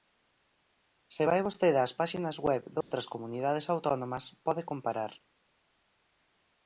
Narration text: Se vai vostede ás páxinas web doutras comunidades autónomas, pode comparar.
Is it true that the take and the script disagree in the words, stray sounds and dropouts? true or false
true